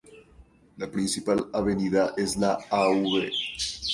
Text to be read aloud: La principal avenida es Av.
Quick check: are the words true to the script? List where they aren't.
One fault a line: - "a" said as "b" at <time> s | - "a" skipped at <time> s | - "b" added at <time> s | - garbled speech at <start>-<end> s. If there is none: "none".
- "la" added at 2.4 s